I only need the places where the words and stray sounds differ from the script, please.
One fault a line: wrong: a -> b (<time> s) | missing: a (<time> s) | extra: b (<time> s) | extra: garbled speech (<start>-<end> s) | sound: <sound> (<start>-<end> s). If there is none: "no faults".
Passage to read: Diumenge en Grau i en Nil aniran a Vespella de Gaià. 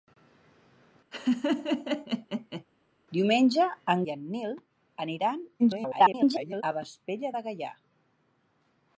sound: laugh (1.1-2.6 s)
missing: Grau (4.0 s)
extra: garbled speech (5.6-6.6 s)